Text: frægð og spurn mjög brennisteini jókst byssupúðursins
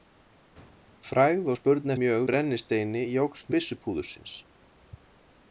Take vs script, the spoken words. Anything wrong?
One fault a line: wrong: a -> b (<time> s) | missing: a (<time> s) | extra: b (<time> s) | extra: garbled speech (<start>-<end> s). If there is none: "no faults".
no faults